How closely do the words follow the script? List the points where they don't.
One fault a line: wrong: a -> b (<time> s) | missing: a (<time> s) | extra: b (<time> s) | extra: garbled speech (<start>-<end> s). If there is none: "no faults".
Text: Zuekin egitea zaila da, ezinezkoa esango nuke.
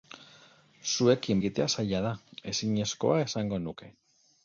no faults